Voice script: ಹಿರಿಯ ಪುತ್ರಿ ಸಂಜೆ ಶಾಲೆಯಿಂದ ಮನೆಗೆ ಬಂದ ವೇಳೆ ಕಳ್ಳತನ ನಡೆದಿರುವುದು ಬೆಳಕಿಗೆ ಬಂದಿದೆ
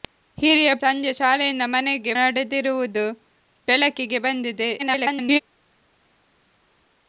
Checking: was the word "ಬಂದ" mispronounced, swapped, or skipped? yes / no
yes